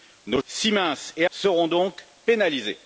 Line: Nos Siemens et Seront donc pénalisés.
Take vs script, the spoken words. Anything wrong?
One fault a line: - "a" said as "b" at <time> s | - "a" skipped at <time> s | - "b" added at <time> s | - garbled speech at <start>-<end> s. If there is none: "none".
none